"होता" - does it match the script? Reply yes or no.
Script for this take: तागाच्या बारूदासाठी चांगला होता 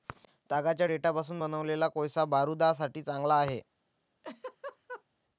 no